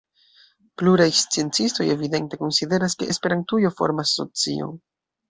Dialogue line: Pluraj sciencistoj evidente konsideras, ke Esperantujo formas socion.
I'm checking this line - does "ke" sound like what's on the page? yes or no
yes